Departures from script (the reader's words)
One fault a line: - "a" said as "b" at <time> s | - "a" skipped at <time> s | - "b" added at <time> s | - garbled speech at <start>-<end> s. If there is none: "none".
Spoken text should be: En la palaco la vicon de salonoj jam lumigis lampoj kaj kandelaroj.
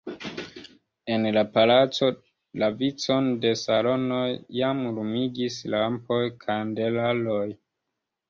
- "kaj" skipped at 6.2 s